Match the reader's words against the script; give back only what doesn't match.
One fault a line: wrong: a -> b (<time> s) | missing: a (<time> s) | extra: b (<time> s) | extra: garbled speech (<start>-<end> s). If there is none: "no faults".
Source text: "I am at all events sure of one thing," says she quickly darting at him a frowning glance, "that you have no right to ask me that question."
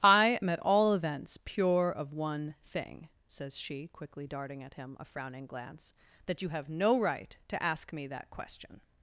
wrong: sure -> pure (1.4 s)